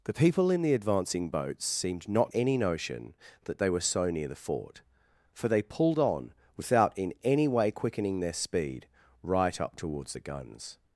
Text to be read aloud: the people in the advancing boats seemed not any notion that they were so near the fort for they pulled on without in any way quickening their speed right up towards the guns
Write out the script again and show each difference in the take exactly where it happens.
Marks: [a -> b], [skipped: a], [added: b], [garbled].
the people in the advancing boats seemed not any notion that they were so near the fort for they pulled on without in any way quickening their speed right up towards the guns